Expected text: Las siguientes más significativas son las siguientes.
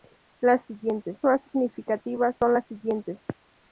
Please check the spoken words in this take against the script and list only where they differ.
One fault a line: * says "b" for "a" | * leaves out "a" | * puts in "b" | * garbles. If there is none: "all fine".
all fine